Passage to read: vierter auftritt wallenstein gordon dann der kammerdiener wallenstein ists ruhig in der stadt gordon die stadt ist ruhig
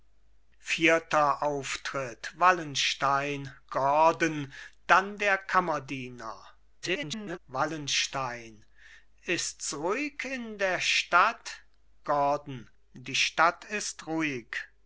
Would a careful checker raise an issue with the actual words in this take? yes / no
yes